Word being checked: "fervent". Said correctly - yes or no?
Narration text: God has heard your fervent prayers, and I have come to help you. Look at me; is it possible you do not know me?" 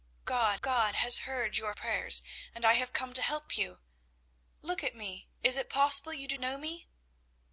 no